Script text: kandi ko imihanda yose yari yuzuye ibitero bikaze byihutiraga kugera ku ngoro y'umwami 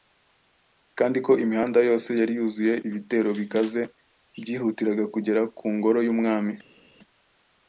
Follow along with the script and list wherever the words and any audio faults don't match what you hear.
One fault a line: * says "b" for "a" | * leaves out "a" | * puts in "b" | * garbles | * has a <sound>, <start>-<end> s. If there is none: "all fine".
all fine